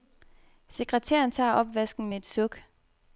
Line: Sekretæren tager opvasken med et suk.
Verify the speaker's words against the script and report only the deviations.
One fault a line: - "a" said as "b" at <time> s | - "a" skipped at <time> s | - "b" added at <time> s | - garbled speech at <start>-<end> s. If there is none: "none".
none